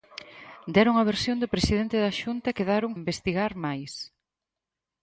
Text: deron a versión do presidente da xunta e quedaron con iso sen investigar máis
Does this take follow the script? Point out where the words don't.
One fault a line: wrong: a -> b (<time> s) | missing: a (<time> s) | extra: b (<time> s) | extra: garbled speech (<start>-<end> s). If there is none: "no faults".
missing: con iso sen (2.9 s)